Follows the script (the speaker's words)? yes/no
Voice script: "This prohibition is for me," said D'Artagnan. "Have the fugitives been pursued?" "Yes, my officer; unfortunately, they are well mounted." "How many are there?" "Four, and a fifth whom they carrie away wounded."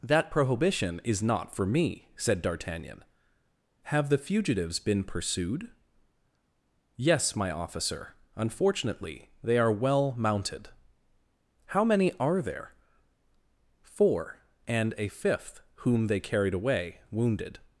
no